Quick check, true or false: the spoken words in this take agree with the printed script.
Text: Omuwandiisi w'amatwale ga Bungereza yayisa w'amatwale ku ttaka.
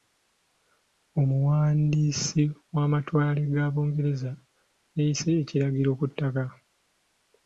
false